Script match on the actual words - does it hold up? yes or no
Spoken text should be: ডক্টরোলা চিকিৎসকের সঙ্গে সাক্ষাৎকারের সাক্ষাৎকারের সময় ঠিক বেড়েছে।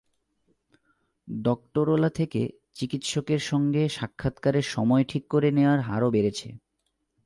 no